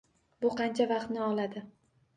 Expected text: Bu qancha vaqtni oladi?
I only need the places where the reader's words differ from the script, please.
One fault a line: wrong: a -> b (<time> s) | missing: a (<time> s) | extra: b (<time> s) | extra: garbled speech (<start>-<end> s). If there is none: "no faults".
no faults